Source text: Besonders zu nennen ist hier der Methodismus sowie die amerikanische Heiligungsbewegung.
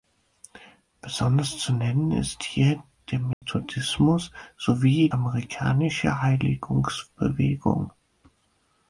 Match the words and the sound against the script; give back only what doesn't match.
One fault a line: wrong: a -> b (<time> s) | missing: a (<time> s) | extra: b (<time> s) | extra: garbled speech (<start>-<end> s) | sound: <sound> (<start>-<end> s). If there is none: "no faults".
sound: dropout (3.3-3.4 s)
missing: die (5.1 s)